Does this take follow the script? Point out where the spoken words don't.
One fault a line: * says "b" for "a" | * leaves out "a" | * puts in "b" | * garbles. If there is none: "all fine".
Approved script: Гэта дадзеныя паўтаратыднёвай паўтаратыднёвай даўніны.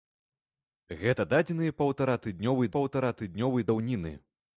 all fine